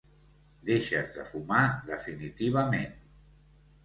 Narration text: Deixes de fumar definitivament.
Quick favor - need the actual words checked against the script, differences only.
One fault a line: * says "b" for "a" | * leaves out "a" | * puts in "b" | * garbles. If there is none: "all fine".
all fine